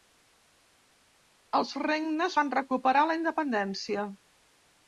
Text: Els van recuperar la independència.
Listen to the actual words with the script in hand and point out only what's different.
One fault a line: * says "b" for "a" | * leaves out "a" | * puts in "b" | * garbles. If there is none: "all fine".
* puts in "regnes"